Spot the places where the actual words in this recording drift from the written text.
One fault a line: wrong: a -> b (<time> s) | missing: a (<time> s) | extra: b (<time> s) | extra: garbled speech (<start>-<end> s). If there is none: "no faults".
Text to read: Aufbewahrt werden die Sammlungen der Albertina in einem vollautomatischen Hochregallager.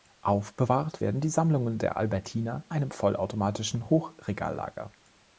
missing: in (2.6 s)